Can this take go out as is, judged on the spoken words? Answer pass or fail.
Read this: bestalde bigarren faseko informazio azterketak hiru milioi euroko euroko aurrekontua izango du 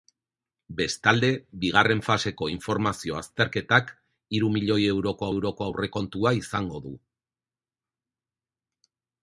pass